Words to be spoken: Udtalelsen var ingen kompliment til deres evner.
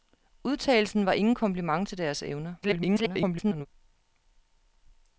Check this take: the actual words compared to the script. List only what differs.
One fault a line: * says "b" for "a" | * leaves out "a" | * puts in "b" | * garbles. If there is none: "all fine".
* garbles